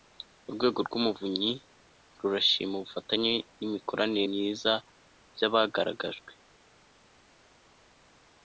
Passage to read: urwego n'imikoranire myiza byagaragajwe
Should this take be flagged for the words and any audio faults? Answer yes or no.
yes